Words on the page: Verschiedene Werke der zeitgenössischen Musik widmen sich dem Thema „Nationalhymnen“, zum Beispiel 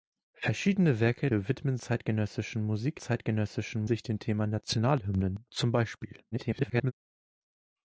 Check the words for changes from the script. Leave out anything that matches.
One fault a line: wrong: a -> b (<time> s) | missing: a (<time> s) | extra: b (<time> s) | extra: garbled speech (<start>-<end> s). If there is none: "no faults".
wrong: der -> widmen (1.3 s)
wrong: widmen -> zeitgenössischen (3.0 s)
extra: garbled speech (6.3-6.9 s)